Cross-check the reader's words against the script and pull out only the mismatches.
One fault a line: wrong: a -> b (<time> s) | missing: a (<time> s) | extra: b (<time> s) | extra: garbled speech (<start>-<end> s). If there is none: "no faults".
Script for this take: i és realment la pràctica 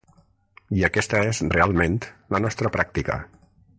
extra: aquesta (0.9 s)
extra: nostra (2.4 s)